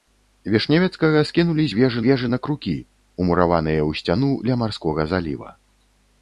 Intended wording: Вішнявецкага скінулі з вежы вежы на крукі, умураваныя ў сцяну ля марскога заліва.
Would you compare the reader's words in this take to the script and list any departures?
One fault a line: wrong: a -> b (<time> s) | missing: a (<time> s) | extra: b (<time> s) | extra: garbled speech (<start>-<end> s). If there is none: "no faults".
no faults